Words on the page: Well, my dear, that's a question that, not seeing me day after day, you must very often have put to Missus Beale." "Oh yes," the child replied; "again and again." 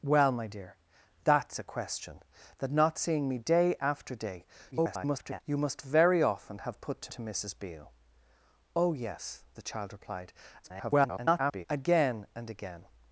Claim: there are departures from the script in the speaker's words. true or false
true